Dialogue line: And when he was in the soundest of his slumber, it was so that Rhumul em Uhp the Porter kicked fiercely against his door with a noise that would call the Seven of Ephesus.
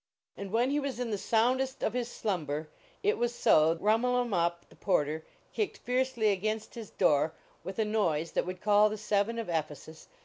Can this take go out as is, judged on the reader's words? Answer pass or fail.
fail